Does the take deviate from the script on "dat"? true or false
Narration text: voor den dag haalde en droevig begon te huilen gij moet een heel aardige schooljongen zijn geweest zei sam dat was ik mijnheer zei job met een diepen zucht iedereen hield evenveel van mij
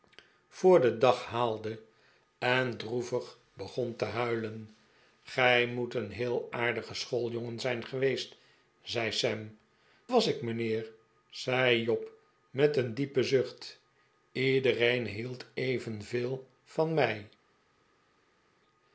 true